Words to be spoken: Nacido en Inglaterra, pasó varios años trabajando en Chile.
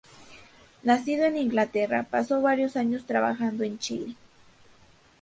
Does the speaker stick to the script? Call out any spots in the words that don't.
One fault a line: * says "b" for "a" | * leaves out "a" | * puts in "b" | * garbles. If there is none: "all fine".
all fine